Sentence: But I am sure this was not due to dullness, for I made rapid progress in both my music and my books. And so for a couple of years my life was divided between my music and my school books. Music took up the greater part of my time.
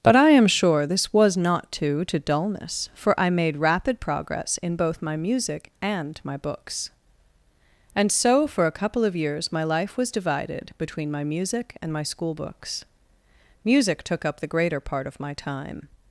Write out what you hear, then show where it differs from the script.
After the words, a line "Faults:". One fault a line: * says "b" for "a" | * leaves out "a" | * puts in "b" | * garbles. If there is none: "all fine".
But I am sure this was not due to dullness, for I made rapid progress in both my music and my books. And so for a couple of years my life was divided between my music and my school books. Music took up the greater part of my time.
Faults:
all fine